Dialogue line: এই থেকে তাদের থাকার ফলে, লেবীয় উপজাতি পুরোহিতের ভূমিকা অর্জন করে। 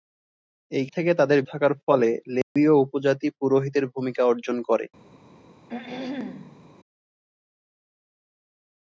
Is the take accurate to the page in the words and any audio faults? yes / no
no